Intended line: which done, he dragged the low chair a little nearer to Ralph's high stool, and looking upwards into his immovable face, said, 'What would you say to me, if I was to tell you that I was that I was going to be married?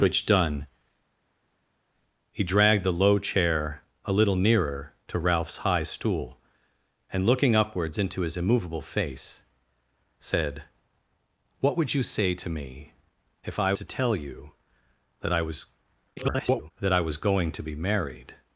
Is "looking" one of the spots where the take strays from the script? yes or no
no